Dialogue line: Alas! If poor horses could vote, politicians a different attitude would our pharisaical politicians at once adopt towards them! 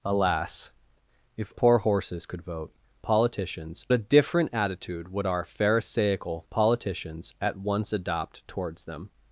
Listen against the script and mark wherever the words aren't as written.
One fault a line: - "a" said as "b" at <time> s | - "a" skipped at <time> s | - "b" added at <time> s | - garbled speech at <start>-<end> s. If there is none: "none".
none